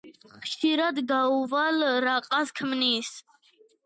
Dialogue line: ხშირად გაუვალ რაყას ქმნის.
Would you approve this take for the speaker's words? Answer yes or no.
yes